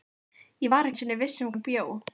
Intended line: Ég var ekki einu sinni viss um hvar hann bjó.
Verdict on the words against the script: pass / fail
fail